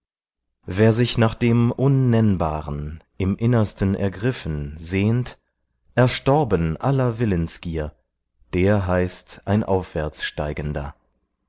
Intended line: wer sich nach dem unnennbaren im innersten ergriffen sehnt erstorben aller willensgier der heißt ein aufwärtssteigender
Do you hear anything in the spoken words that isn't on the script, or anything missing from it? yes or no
no